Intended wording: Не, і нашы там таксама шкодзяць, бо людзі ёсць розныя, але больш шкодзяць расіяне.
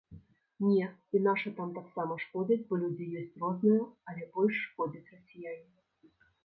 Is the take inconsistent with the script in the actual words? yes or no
no